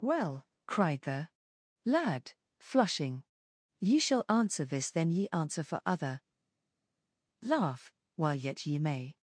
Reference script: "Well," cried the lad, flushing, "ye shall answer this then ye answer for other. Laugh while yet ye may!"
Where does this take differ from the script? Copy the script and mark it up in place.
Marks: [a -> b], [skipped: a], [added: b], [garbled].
"Well," cried the lad, flushing, "ye shall answer this then ye answer for other. Laugh while yet ye may!"